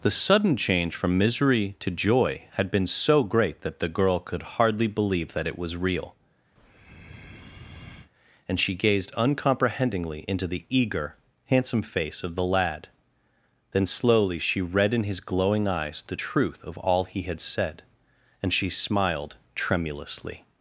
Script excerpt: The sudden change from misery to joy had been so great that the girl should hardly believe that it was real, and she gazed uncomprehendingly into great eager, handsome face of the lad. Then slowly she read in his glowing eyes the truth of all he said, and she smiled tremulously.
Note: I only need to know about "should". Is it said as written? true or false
false